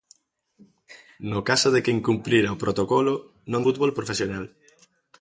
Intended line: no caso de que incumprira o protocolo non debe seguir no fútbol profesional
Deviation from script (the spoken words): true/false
true